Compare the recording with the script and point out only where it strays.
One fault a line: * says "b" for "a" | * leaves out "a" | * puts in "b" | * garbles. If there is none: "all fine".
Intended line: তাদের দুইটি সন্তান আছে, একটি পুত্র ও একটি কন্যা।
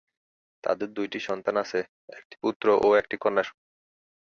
* leaves out "একটি"